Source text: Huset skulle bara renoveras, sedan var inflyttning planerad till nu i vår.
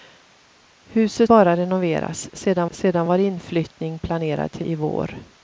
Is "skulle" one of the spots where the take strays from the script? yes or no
yes